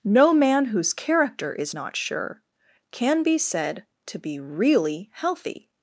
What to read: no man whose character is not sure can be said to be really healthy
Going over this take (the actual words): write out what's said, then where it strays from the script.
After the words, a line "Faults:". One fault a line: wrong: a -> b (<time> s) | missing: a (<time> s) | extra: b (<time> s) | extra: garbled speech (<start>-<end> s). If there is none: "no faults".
no man whose character is not sure can be said to be really healthy
Faults:
no faults